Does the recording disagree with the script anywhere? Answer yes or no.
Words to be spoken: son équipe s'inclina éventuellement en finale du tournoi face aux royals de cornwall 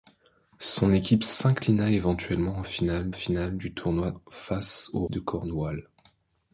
yes